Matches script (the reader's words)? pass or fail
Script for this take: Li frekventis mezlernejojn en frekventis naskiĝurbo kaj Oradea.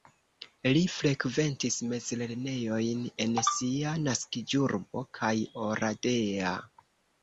fail